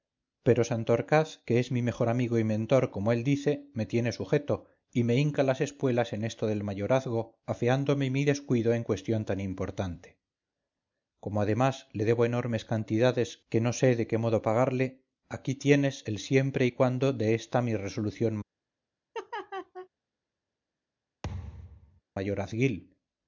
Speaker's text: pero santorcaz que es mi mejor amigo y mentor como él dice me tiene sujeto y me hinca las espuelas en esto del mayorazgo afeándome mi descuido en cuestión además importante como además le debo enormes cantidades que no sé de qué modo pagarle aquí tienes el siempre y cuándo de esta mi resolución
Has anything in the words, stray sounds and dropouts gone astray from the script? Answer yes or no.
yes